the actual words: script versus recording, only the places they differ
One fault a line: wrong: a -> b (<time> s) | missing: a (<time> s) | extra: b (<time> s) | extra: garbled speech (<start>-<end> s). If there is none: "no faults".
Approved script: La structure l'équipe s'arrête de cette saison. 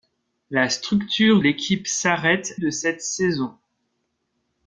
no faults